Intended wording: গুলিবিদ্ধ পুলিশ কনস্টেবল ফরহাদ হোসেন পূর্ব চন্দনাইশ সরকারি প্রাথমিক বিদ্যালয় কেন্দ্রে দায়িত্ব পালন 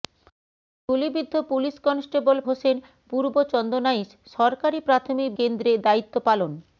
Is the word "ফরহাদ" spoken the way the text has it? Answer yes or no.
no